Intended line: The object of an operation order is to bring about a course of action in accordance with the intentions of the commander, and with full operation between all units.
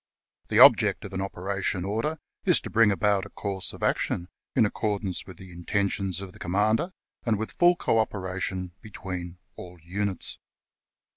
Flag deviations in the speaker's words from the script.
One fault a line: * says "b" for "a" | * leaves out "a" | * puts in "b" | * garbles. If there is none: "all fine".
* puts in "co"